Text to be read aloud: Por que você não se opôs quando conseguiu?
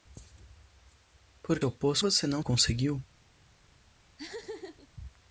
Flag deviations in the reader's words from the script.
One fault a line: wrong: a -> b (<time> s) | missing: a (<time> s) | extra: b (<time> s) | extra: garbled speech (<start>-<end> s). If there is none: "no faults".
wrong: que -> opôs (1.6 s)
missing: se opôs quando (2.4 s)